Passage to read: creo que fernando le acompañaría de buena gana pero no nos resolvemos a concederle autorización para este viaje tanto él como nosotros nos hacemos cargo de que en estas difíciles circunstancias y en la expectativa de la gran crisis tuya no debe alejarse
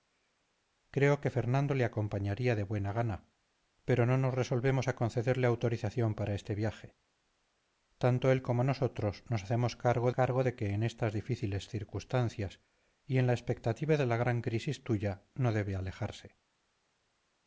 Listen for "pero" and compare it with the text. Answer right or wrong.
right